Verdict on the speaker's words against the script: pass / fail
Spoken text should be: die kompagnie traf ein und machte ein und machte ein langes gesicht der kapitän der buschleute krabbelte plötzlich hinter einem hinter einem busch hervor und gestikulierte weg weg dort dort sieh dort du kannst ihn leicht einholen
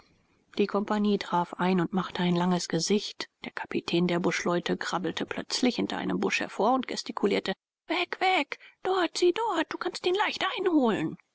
fail